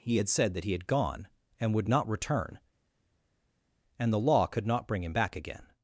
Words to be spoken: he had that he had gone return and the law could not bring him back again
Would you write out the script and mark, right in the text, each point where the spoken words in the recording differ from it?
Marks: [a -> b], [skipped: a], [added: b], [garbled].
he had [added: said] that he had gone [added: and would not] return and the law could not bring him back again